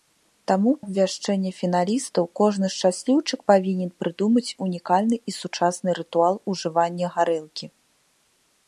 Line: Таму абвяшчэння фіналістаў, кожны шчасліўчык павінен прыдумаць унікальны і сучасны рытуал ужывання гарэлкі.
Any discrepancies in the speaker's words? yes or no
no